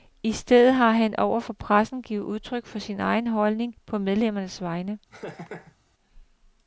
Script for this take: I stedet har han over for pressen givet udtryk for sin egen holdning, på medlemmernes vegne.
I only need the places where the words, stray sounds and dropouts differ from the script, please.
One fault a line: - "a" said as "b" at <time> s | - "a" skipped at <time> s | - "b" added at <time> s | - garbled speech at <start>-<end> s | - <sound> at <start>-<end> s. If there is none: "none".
- laugh at 5.1-5.8 s